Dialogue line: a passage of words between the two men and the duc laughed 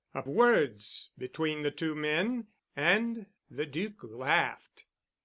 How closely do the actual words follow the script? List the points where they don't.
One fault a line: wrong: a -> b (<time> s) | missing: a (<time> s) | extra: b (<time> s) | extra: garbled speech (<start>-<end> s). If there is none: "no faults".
missing: passage of (0.2 s)